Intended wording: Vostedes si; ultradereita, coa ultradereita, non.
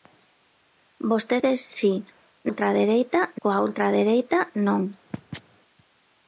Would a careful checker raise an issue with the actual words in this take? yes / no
no